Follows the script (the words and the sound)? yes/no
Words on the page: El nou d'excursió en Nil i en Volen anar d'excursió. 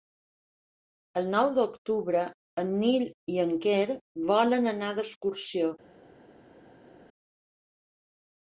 no